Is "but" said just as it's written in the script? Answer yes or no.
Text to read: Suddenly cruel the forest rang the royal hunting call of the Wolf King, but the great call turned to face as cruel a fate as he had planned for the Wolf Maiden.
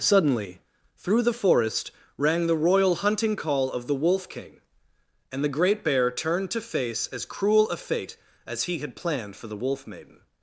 no